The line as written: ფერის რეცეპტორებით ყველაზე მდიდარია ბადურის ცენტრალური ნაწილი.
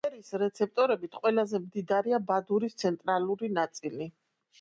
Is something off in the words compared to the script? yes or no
no